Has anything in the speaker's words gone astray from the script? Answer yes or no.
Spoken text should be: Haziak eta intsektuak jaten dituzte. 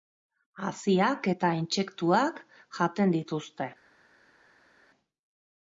no